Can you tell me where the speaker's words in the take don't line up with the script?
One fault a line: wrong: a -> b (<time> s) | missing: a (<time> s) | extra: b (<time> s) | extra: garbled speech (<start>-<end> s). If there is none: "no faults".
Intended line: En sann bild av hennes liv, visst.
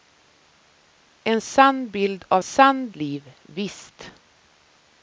wrong: hennes -> sann (2.4 s)